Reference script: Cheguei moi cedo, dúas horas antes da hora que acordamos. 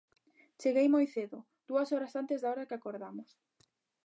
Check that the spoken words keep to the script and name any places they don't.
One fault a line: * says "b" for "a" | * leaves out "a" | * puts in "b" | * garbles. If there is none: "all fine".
all fine